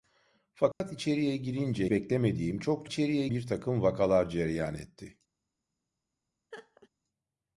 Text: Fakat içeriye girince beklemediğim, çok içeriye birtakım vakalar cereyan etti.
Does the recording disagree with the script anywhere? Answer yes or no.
no